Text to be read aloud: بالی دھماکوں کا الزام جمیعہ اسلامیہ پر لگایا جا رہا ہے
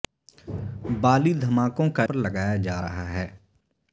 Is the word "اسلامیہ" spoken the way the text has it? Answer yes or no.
no